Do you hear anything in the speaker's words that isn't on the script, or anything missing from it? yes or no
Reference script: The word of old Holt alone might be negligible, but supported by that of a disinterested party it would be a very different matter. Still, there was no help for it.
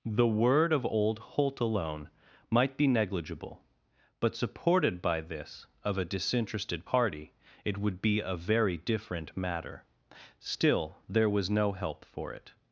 yes